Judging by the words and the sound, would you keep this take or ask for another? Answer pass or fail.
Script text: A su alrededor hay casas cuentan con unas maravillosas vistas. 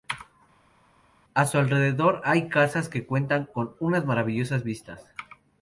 fail